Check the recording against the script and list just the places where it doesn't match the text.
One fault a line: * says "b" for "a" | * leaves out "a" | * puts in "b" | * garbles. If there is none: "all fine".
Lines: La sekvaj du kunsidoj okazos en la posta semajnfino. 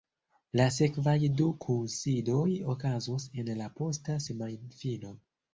all fine